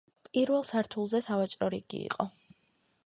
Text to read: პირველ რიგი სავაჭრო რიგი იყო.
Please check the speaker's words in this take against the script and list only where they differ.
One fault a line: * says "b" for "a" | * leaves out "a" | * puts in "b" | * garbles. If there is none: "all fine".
* says "სართულზე" for "რიგი"